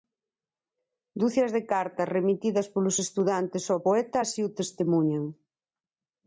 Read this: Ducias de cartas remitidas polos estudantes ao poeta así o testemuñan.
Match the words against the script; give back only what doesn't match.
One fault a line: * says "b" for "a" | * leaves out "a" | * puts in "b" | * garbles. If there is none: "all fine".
all fine